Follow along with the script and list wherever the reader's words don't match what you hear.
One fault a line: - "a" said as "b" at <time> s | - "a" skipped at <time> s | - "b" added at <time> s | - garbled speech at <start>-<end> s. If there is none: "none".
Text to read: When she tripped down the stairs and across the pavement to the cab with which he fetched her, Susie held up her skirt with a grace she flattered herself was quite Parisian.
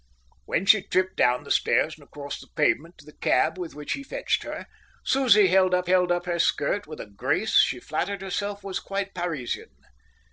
- "held up" added at 5.8 s